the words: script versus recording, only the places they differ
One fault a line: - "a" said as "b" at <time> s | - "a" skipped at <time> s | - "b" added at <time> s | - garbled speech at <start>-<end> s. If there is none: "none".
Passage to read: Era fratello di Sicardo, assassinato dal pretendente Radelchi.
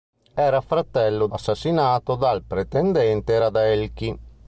- "di Sicardo" skipped at 1.3 s